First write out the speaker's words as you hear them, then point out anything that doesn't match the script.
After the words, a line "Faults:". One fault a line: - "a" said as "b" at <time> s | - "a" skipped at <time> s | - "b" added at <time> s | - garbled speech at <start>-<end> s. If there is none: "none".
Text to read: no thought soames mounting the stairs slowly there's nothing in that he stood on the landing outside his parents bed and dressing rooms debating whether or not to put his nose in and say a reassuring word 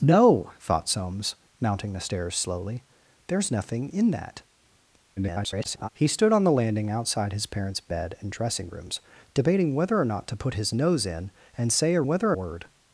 no thought soames mounting the stairs slowly there's nothing in that [garbled] he stood on the landing outside his parents bed and dressing rooms debating whether or not to put his nose in and say a whether word
Faults:
- garbled speech at 5.2-5.9 s
- "reassuring" said as "whether" at 12.1 s